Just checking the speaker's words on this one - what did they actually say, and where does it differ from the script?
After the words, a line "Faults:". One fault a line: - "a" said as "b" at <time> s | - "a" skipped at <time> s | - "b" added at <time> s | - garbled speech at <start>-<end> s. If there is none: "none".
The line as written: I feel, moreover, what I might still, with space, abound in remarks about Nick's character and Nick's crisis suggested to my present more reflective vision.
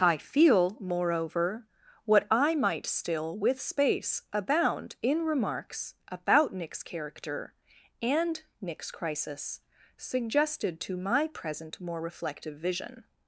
I feel, moreover, what I might still, with space, abound in remarks about Nick's character and Nick's crisis suggested to my present more reflective vision.
Faults:
none